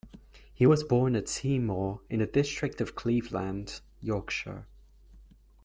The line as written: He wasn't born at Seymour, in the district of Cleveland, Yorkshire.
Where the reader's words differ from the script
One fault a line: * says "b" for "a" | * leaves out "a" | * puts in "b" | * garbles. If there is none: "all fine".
* says "was" for "wasn't"